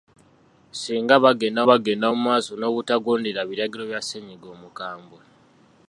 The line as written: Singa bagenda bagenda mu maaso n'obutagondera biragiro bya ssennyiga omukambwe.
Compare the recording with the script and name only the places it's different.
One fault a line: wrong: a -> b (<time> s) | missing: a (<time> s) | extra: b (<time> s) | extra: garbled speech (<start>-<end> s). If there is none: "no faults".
no faults